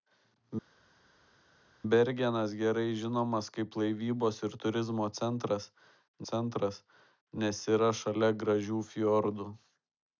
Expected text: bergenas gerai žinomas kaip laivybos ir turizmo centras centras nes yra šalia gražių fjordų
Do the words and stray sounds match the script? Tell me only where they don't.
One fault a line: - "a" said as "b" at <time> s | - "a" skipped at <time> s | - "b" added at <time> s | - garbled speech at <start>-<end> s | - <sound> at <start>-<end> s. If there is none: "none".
none